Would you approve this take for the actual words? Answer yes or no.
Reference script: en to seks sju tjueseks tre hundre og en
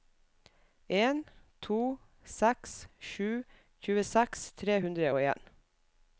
yes